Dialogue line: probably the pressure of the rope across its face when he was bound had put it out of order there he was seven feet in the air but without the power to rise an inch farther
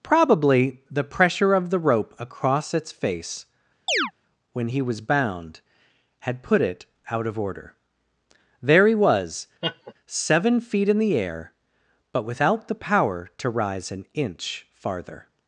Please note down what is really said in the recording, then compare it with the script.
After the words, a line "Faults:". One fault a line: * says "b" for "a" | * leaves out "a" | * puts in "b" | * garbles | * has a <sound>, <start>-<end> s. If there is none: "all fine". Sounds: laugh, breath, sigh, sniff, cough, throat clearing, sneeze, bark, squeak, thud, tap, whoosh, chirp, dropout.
probably the pressure of the rope across its face when he was bound had put it out of order there he was seven feet in the air but without the power to rise an inch farther
Faults:
* has a chirp, 3.9-4.1 s
* has a laugh, 9.6-9.9 s